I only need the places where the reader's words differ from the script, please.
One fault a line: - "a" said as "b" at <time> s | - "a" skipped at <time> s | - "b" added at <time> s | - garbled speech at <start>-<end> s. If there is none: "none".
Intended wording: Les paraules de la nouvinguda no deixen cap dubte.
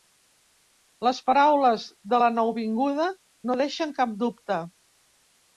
none